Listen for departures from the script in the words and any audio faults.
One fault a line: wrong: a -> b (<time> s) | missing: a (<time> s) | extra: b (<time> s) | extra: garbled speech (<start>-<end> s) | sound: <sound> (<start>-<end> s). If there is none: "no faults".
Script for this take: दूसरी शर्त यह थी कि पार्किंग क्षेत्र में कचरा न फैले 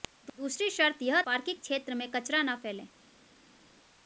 missing: थी कि (1.2 s)